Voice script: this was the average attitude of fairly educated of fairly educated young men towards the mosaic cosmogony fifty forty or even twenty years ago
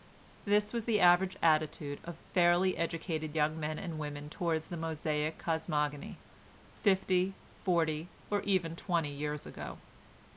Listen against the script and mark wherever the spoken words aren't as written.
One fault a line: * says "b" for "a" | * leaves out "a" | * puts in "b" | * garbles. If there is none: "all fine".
* says "young men and women" for "of fairly educated young men"